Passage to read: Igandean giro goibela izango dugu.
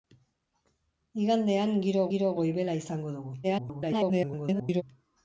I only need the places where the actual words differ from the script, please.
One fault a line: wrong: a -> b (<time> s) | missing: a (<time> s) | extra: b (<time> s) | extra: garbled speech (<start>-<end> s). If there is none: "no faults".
extra: giro (2.1 s)
extra: garbled speech (3.4-4.8 s)